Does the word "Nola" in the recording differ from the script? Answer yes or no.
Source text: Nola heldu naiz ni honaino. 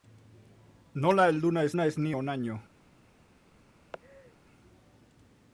no